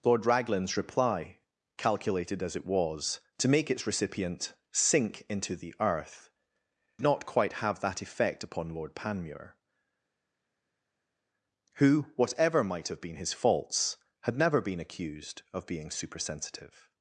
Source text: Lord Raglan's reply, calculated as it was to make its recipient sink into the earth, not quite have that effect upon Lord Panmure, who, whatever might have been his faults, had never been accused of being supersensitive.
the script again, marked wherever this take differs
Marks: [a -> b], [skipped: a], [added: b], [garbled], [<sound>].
Lord Raglan's reply, calculated as it was to make its recipient sink into the earth, not quite have that effect upon Lord Panmure, who, whatever might have been his faults, had never been accused of being supersensitive.